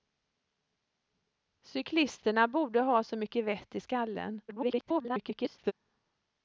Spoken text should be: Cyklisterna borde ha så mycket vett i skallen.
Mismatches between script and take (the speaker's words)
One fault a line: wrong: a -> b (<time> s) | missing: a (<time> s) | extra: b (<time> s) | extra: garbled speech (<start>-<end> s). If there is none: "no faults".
extra: garbled speech (4.5-5.7 s)